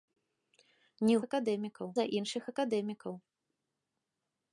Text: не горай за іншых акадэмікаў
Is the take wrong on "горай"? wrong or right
wrong